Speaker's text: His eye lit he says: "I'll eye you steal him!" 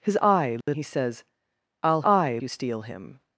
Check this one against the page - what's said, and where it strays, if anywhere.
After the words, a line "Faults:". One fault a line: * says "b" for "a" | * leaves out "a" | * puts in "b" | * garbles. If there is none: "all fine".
His eye lit he says: "I'll eye you steal him!"
Faults:
all fine